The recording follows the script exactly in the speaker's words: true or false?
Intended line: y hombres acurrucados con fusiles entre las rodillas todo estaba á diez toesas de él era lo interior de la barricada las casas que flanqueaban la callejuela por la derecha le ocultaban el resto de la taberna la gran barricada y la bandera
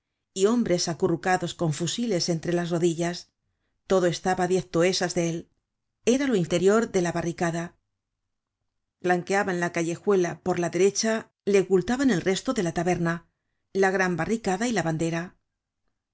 false